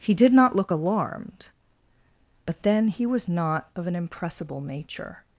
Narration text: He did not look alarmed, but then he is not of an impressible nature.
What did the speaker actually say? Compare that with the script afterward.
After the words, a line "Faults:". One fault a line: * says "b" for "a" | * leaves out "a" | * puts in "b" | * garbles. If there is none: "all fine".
He did not look alarmed, but then he was not of an impressible nature.
Faults:
* says "was" for "is"